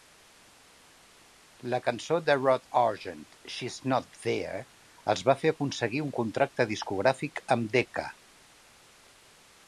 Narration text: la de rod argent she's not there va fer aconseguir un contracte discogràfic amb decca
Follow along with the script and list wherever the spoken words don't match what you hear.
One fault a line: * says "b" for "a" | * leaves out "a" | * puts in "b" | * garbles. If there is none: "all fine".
* puts in "cançó"
* puts in "els"